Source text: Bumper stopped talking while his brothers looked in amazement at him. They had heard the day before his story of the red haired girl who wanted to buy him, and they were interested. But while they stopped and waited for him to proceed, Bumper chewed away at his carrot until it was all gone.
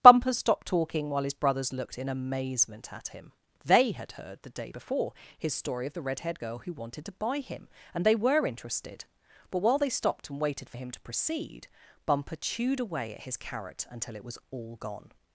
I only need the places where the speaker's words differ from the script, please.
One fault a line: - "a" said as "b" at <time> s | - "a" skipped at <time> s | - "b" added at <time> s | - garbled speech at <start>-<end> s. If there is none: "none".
none